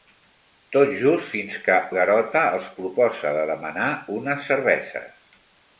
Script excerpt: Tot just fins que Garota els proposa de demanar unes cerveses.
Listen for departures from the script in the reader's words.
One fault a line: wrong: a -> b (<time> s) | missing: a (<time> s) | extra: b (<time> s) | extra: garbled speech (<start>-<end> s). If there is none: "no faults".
no faults